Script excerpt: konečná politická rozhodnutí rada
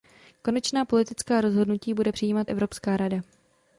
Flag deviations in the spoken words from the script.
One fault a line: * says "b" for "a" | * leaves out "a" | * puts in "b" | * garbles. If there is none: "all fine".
* puts in "bude přijímat evropská"